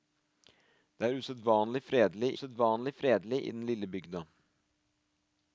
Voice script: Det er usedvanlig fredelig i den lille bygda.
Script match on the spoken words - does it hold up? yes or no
no